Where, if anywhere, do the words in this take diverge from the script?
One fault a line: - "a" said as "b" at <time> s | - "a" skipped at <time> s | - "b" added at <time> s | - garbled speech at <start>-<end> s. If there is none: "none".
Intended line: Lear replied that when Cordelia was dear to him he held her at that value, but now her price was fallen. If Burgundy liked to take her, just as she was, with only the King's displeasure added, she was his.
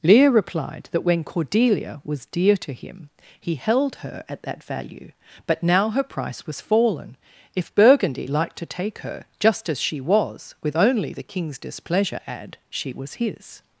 - "added" said as "add" at 12.2 s